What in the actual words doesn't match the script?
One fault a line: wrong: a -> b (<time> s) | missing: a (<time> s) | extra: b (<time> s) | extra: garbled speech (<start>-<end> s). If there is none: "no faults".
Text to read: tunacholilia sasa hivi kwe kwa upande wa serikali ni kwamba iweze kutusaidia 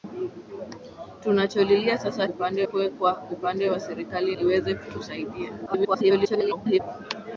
wrong: hivi -> upande (2.3 s)
missing: ni kwamba (4.3 s)
extra: garbled speech (5.7-6.8 s)